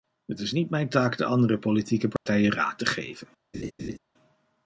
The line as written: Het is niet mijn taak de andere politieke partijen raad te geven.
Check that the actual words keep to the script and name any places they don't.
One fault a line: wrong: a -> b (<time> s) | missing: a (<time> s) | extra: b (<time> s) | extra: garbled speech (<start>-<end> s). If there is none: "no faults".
no faults